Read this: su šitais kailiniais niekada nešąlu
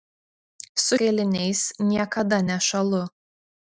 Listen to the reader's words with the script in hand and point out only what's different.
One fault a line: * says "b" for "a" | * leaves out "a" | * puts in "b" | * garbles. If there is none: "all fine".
* leaves out "šitais"